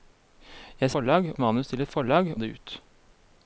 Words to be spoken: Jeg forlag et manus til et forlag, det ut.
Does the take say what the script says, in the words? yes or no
yes